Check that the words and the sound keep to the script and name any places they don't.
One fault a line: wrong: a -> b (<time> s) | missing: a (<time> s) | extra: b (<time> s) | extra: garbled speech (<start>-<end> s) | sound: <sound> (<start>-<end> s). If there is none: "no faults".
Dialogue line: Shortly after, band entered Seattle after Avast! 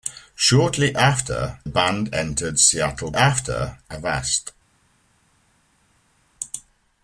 no faults